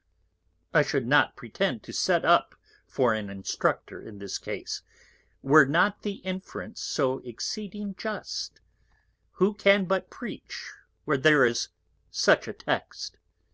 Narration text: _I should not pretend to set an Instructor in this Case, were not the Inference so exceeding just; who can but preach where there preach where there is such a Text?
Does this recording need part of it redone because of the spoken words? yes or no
yes